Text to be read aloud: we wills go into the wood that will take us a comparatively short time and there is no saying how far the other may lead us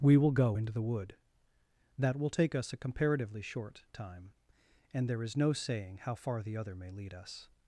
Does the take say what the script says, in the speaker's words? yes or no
no